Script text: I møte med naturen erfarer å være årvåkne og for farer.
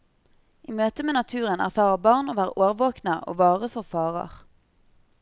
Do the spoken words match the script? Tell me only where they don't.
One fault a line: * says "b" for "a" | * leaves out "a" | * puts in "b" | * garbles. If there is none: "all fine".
* puts in "barn"
* puts in "vare"